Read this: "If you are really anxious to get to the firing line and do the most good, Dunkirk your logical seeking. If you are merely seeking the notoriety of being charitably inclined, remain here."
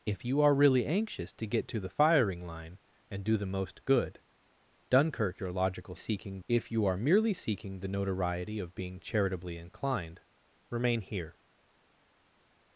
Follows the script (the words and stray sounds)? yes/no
yes